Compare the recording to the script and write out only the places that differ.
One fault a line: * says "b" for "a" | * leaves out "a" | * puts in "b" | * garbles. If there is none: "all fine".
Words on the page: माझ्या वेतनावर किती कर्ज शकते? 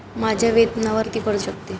all fine